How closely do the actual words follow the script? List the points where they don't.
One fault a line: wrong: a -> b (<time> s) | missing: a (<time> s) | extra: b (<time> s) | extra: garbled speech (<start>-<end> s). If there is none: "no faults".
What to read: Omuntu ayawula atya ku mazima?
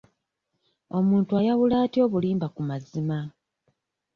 extra: obulimba (2.1 s)